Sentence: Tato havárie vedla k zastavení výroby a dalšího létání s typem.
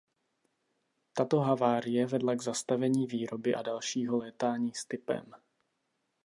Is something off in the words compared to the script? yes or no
no